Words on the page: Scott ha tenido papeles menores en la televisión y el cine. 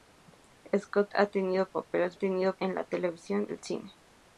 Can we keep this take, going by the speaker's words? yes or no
no